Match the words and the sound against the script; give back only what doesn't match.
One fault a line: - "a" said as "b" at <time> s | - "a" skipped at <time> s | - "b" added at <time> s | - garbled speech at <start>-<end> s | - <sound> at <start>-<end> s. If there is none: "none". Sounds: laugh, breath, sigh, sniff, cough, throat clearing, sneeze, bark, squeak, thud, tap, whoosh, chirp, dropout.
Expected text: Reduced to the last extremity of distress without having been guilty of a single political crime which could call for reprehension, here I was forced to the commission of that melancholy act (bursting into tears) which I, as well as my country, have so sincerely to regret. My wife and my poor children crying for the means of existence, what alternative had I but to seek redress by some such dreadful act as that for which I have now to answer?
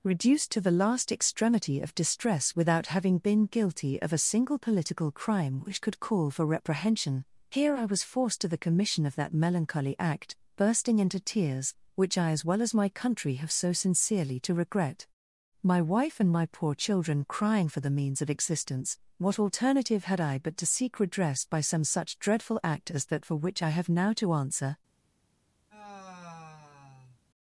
- sigh at 25.7-27.2 s